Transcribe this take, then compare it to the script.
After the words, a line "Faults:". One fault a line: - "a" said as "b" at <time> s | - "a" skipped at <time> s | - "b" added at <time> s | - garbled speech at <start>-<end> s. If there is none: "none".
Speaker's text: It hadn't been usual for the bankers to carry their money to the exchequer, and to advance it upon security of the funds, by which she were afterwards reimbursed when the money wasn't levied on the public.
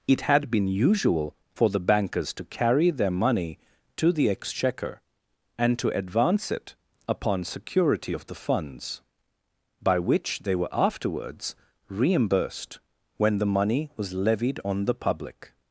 It had been usual for the bankers to carry their money to the exchequer, and to advance it upon security of the funds, by which they were afterwards reimbursed when the money was levied on the public.
Faults:
- "hadn't" said as "had" at 0.2 s
- "she" said as "they" at 10.4 s
- "wasn't" said as "was" at 14.0 s